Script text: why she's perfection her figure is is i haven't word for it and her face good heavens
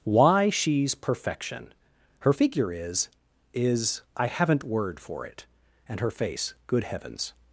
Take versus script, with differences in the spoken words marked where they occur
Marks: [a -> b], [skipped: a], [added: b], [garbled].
why she's perfection her figure is is i haven't word for it and her face good heavens